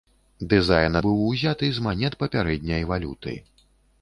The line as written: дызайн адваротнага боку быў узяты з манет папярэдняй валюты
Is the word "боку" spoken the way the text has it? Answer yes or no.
no